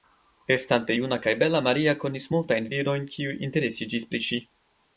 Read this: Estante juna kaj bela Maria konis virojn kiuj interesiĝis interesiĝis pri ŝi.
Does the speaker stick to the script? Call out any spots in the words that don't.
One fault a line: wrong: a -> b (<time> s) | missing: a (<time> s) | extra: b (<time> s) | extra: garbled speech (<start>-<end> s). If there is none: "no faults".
extra: multajn (2.4 s)
missing: interesiĝis (4.1 s)